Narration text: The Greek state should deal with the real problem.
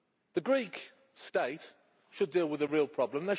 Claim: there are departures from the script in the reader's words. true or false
false